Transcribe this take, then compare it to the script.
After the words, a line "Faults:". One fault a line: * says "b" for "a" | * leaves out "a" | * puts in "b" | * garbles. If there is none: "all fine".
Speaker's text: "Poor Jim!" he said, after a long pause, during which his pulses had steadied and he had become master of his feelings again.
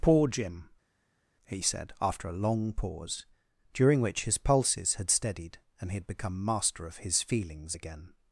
"Poor Jim!" he said, after a long pause, during which his pulses had steadied and he had become master of his feelings again.
Faults:
all fine